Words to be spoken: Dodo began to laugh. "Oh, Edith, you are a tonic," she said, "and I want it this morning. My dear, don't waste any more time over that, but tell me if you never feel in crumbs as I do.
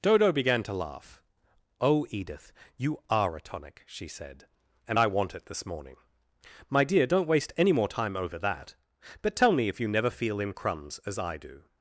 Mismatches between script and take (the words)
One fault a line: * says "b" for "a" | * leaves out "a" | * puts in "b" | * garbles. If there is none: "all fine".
all fine